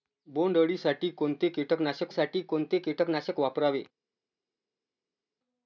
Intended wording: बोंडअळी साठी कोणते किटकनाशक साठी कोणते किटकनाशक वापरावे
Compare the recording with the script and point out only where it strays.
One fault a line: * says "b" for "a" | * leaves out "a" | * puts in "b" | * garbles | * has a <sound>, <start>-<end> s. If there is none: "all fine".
all fine